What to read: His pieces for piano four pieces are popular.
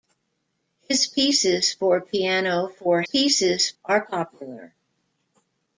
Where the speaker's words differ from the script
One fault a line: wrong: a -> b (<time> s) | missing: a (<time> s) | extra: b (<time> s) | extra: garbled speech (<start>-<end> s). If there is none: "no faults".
no faults